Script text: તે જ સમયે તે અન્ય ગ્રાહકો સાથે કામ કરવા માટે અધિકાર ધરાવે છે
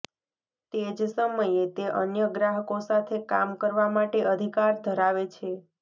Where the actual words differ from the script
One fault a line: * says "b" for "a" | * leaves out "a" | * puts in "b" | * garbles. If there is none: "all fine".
all fine